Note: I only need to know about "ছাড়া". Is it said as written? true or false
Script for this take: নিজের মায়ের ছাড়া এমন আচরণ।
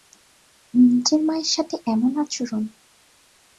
false